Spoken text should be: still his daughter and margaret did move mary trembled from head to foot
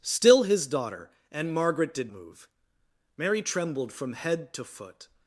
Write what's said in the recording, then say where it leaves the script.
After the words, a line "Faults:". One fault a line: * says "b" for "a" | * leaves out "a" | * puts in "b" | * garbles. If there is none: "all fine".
still his daughter and margaret did move mary trembled from head to foot
Faults:
all fine